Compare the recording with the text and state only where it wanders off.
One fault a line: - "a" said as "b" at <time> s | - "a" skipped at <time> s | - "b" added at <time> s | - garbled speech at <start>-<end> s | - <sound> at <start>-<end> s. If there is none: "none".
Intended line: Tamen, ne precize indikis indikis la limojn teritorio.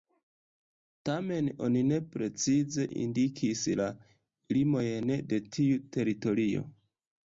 - "oni" added at 1.7 s
- "indikis" skipped at 3.6 s
- "de tiu" added at 5.3 s